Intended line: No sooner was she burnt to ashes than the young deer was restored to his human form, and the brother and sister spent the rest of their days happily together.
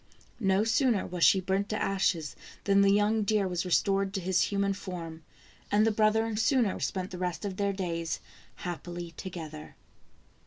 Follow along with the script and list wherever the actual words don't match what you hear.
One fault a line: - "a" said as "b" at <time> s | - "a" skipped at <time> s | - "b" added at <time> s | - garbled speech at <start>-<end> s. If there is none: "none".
- "sister" said as "sooner" at 6.3 s